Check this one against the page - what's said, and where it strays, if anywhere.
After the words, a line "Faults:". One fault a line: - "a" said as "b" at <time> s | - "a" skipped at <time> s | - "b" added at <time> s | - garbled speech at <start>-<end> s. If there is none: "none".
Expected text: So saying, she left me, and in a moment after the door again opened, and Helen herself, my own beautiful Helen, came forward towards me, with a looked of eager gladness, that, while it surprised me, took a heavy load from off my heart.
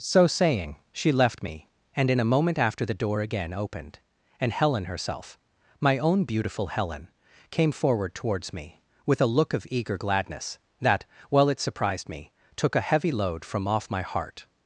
So saying, she left me, and in a moment after the door again opened, and Helen herself, my own beautiful Helen, came forward towards me, with a look of eager gladness, that, while it surprised me, took a heavy load from off my heart.
Faults:
- "looked" said as "look" at 9.4 s